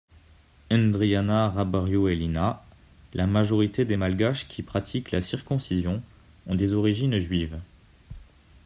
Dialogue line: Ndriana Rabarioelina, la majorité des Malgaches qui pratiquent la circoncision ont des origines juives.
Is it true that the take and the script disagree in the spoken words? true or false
false